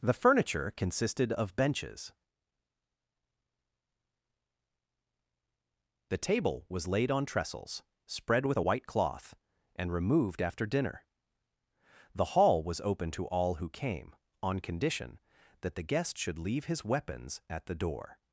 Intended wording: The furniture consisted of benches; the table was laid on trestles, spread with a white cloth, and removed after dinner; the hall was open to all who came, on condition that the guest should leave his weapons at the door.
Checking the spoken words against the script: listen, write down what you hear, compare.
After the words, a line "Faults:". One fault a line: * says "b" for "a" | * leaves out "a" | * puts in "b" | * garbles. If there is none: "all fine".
The furniture consisted of benches; the table was laid on trestles, spread with a white cloth, and removed after dinner; the hall was open to all who came, on condition that the guest should leave his weapons at the door.
Faults:
all fine